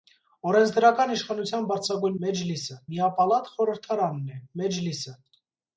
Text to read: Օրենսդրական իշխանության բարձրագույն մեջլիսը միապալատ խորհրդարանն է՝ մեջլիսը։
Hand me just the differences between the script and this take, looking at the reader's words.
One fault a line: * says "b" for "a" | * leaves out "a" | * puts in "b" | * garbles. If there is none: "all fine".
all fine